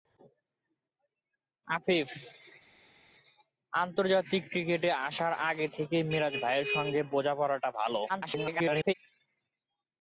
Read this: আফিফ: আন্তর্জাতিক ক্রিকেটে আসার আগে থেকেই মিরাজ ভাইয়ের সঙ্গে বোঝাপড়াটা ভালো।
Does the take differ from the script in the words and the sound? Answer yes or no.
yes